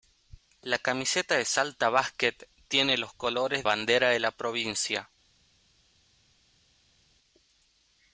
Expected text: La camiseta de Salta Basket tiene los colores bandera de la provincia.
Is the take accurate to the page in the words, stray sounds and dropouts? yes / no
yes